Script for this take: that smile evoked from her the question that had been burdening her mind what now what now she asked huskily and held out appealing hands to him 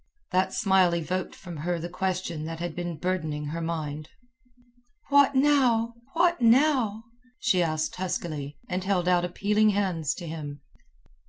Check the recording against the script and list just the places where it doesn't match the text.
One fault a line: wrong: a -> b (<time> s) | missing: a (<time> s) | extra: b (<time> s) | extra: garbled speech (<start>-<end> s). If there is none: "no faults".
no faults